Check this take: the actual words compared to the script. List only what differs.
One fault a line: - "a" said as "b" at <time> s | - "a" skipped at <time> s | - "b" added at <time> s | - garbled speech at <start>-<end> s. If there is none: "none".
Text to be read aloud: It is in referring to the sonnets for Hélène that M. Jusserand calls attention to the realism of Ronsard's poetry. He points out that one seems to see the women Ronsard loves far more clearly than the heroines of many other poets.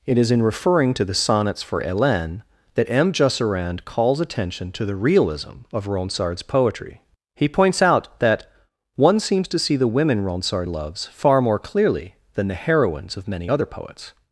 none